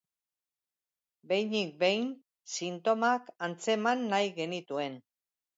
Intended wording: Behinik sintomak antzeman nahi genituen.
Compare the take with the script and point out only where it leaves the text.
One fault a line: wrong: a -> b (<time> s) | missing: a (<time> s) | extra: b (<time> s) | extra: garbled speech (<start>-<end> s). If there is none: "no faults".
extra: behin (1.8 s)